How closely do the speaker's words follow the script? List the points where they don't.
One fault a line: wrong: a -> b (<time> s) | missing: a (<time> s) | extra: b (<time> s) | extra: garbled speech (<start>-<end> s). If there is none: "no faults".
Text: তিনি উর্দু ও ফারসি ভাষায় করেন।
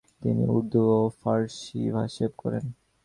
no faults